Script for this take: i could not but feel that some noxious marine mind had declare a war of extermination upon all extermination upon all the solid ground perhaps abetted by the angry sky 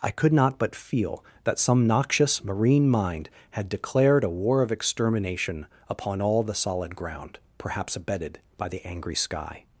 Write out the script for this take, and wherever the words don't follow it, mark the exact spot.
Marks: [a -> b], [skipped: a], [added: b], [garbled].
i could not but feel that some noxious marine mind had [declare -> declared] a war of extermination upon all [skipped: extermination upon all] the solid ground perhaps abetted by the angry sky